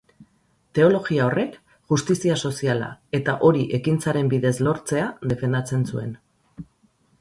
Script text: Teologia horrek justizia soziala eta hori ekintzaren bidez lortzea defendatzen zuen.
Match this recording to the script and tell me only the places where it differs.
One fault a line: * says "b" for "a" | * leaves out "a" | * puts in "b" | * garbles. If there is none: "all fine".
all fine